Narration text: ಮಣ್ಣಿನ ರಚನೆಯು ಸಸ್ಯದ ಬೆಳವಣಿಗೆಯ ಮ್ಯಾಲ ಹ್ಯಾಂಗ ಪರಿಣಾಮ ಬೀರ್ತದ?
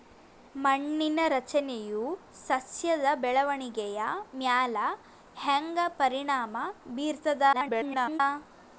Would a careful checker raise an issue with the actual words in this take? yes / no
yes